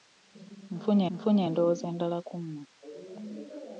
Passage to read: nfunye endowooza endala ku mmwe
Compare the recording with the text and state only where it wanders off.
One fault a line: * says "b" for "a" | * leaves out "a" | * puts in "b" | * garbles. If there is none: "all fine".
* puts in "nfunye"